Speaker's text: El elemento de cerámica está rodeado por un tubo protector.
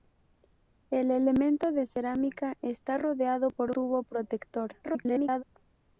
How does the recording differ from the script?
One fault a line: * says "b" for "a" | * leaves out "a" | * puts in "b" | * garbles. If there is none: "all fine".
* leaves out "un"
* garbles